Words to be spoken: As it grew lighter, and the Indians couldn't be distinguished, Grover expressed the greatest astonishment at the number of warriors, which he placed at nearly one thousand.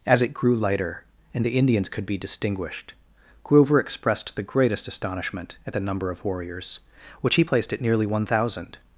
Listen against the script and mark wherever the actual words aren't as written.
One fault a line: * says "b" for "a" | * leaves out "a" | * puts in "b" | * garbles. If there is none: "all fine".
* says "could" for "couldn't"